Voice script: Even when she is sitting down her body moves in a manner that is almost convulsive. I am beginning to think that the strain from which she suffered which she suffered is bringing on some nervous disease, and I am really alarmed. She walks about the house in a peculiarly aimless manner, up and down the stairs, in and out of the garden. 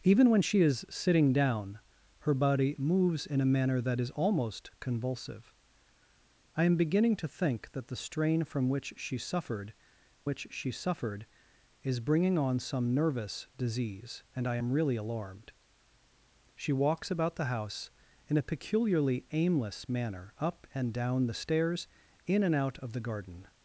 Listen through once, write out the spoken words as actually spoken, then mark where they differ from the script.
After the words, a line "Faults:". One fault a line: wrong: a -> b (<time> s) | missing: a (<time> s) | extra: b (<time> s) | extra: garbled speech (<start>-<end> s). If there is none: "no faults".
Even when she is sitting down her body moves in a manner that is almost convulsive. I am beginning to think that the strain from which she suffered which she suffered is bringing on some nervous disease, and I am really alarmed. She walks about the house in a peculiarly aimless manner, up and down the stairs, in and out of the garden.
Faults:
no faults